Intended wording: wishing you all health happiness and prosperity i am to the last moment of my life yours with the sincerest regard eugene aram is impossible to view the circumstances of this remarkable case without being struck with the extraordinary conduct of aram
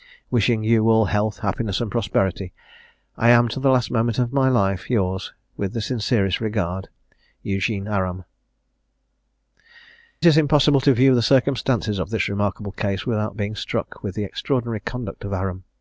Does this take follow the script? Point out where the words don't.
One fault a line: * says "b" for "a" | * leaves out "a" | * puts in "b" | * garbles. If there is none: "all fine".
all fine